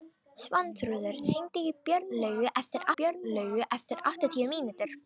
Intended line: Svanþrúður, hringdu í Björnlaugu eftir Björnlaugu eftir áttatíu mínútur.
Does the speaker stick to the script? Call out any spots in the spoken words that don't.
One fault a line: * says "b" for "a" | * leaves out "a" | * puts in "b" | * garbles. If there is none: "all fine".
all fine